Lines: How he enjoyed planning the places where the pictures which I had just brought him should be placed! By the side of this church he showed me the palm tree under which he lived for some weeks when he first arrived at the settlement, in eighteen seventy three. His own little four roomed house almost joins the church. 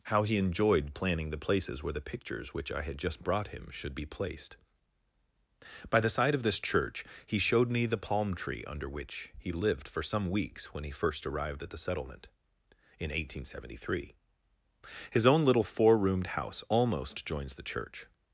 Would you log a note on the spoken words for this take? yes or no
no